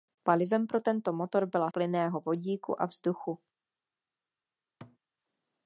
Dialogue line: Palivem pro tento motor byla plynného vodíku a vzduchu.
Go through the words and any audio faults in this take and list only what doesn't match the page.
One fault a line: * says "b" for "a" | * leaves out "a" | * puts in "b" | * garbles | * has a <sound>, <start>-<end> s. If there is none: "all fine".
* has a thud, 4.8-5.0 s